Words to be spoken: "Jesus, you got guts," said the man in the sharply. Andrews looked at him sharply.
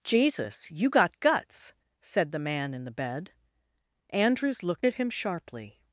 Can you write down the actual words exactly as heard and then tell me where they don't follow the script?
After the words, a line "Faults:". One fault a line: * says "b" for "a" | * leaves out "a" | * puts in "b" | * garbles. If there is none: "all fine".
"Jesus, you got guts," said the man in the bed. Andrews looked at him sharply.
Faults:
* says "bed" for "sharply"